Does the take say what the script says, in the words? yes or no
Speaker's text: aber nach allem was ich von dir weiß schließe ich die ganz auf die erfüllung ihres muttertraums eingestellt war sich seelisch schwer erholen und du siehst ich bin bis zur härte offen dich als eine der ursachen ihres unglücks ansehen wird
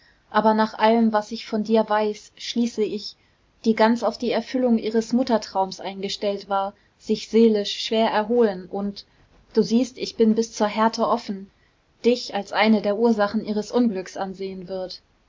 yes